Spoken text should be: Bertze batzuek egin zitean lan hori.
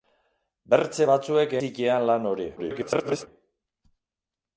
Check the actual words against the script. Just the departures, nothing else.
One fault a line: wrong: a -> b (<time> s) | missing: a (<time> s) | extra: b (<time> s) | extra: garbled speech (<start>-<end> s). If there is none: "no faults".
missing: egin (1.6 s)
extra: garbled speech (2.6-3.3 s)